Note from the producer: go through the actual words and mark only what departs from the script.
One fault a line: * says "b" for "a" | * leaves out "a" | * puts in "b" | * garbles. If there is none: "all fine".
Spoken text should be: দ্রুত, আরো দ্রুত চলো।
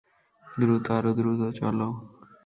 all fine